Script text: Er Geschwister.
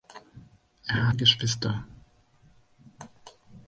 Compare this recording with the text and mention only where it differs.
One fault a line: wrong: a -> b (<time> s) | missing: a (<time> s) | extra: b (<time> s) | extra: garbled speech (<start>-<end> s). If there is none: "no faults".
no faults